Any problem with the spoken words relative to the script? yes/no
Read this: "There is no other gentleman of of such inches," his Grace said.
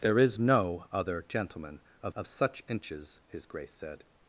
no